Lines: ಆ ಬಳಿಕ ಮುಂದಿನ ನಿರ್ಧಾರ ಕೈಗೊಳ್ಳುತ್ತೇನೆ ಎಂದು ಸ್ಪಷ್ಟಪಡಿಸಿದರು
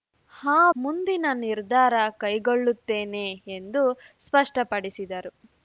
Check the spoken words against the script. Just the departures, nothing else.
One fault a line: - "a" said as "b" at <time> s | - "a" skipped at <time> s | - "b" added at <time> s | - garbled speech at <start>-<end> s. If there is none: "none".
- "ಬಳಿಕ" skipped at 0.6 s